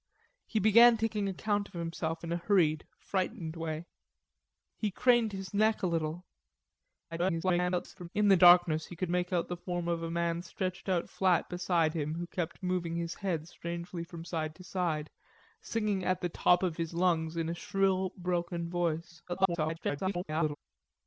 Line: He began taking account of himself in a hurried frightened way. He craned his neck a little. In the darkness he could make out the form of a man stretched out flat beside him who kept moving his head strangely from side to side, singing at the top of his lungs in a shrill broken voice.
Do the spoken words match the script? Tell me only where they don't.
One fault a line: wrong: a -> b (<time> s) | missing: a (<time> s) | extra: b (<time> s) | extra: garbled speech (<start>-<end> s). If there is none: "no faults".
extra: garbled speech (7.1-8.1 s)
extra: garbled speech (19.3-20.6 s)